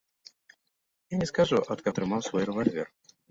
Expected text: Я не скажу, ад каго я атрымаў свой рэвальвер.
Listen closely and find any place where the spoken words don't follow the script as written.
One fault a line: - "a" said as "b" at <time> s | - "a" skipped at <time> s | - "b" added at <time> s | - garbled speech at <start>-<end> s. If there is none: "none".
- "каго" skipped at 1.9 s